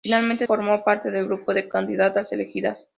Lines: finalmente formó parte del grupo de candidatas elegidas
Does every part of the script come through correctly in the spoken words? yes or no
yes